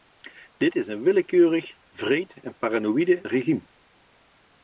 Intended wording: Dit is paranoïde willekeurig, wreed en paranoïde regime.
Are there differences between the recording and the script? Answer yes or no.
yes